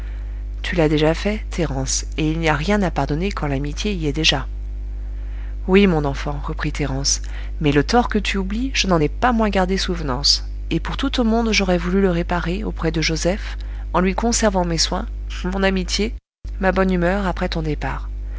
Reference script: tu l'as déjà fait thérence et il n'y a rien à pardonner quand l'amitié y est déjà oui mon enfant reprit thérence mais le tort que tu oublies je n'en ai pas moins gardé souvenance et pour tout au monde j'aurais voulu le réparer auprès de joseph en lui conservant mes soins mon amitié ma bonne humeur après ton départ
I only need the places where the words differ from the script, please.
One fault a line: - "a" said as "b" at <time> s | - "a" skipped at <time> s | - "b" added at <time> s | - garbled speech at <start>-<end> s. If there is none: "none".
none